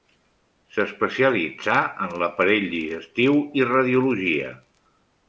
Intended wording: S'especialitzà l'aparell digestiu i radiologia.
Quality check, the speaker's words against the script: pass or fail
fail